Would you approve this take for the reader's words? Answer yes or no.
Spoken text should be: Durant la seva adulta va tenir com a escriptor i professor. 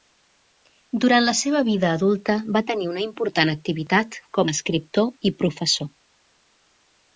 no